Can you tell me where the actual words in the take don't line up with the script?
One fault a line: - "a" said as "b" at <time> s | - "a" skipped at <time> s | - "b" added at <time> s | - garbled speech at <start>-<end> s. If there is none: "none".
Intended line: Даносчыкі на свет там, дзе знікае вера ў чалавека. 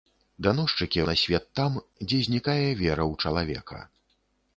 none